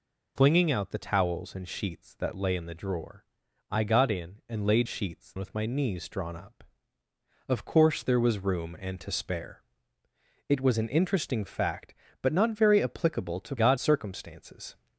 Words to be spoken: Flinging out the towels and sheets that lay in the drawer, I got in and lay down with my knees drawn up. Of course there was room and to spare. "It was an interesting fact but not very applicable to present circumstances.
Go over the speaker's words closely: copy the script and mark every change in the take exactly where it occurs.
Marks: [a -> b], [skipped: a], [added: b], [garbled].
Flinging out the towels and sheets that lay in the drawer, I got in and lay [down -> sheets] with my knees drawn up. Of course there was room and to spare. "It was an interesting fact but not very applicable to [present -> got] circumstances.